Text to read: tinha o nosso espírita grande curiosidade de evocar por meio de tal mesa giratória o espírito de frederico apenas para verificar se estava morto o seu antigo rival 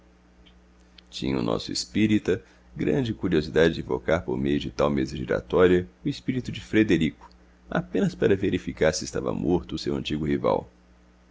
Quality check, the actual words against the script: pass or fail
pass